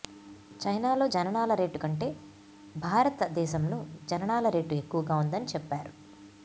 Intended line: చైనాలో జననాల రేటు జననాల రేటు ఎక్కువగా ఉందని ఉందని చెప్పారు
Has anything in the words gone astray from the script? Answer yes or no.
yes